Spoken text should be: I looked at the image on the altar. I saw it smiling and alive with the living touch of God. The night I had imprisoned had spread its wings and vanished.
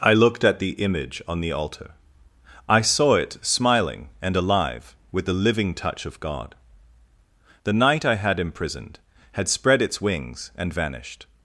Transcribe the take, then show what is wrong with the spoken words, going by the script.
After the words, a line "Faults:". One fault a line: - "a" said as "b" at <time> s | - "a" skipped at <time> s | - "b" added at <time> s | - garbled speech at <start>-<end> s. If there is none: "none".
I looked at the image on the altar. I saw it smiling and alive with the living touch of God. The night I had imprisoned had spread its wings and vanished.
Faults:
none